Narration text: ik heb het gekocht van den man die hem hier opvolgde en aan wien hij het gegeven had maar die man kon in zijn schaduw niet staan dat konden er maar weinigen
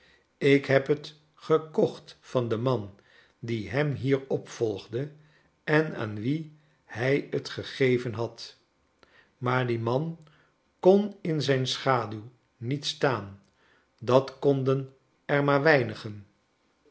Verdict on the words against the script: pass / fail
pass